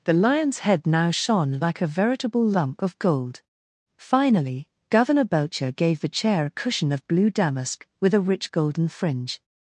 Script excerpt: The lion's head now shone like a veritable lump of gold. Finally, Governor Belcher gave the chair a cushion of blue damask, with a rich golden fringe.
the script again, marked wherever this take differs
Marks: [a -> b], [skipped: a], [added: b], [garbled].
The lion's head now shone like a veritable lump of gold. Finally, Governor Belcher gave the chair a cushion of blue damask, with a rich golden fringe.